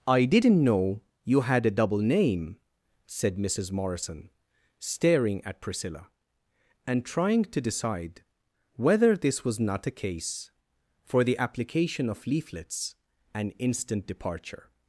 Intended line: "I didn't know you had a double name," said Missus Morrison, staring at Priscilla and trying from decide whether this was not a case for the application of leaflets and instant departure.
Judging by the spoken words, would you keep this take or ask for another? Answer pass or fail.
fail